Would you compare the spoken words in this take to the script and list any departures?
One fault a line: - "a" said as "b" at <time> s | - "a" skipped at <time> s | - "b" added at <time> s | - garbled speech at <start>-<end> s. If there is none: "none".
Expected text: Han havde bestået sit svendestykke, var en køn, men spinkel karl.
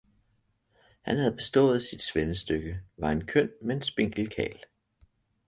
none